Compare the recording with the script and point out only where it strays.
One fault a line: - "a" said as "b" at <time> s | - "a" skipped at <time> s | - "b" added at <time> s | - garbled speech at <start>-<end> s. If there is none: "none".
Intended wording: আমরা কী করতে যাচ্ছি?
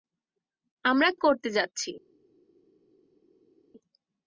- "কী" skipped at 1.1 s